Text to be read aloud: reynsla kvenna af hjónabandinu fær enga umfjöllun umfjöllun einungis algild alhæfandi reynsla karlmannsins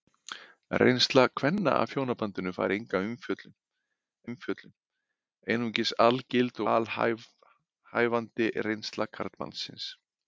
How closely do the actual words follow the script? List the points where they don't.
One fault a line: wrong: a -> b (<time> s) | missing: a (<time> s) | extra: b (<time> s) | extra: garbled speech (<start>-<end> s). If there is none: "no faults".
no faults